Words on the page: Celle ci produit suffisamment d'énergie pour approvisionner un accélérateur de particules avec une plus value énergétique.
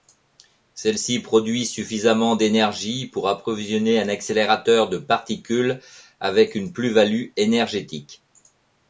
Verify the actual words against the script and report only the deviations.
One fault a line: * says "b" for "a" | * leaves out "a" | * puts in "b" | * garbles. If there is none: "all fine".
all fine